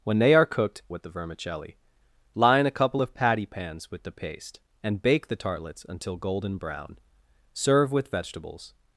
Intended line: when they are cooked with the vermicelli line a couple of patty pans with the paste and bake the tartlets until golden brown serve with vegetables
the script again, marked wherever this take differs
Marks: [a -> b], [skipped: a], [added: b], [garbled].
when they are cooked with the vermicelli line a couple of patty pans with the paste and bake the tartlets until golden brown serve with vegetables